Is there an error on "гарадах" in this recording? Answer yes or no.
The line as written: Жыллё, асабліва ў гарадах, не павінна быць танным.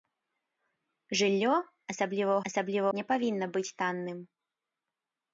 yes